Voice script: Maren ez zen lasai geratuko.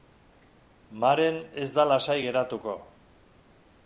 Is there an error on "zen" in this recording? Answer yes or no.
yes